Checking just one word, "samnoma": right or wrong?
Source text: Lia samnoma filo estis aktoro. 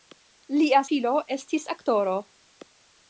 wrong